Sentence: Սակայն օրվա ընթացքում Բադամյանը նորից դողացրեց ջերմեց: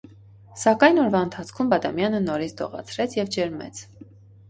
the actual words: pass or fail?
fail